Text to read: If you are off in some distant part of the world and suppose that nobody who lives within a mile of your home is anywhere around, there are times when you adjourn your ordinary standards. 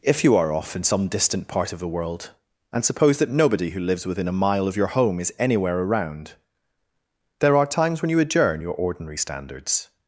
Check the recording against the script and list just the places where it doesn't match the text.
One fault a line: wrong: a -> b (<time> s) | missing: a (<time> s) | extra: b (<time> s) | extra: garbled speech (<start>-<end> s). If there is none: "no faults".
no faults